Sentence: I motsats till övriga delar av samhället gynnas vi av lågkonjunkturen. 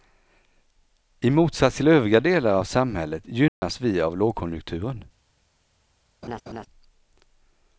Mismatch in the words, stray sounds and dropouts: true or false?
true